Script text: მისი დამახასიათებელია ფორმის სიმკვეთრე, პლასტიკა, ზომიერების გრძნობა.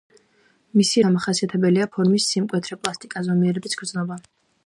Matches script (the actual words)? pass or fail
pass